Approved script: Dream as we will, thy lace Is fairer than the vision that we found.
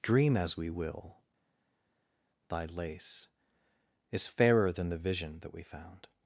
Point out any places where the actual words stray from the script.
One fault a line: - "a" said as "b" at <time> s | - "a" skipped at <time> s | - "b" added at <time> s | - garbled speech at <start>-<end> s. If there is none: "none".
none